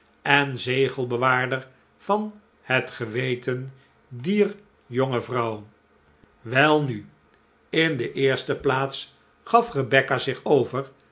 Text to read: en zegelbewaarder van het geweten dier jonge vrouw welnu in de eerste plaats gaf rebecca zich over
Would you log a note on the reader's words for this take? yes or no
no